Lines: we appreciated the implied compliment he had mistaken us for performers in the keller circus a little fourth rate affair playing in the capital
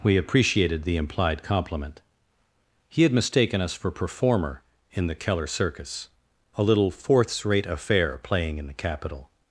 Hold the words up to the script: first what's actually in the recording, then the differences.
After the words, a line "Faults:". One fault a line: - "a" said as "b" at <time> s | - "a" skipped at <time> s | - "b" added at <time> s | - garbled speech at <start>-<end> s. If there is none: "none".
we appreciated the implied compliment he had mistaken us for performer in the keller circus a little fourths rate affair playing in the capital
Faults:
- "performers" said as "performer" at 3.9 s
- "fourth" said as "fourths" at 6.9 s